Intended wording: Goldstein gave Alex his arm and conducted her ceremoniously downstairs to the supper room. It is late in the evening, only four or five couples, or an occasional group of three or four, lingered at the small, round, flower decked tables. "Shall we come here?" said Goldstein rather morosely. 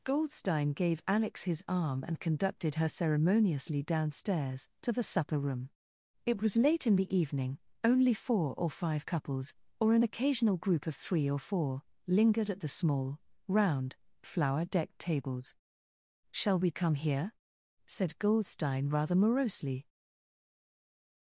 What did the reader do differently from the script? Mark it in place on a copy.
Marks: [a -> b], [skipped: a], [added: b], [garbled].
Goldstein gave Alex his arm and conducted her ceremoniously downstairs to the supper room. It [is -> was] late in the evening, only four or five couples, or an occasional group of three or four, lingered at the small, round, flower decked tables. "Shall we come here?" said Goldstein rather morosely.